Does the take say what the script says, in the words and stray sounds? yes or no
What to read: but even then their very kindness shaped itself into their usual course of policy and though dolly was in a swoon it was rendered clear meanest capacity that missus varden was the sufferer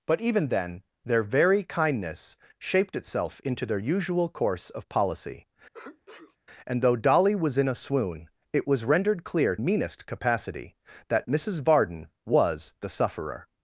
no